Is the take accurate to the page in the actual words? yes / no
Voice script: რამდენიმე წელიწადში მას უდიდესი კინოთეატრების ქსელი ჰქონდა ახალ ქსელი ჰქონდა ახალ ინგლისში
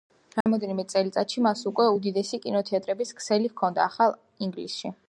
no